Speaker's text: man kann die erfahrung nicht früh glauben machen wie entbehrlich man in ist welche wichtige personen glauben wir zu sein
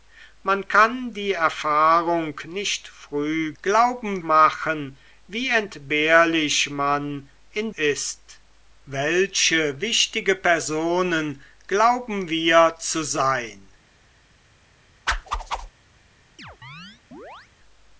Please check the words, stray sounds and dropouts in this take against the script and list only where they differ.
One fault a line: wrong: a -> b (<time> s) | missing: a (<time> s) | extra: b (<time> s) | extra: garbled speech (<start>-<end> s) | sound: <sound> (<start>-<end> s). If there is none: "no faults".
sound: whoosh (15.1-15.7 s)
sound: chirp (16.4-17.5 s)